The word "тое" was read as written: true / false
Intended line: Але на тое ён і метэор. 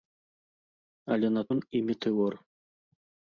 false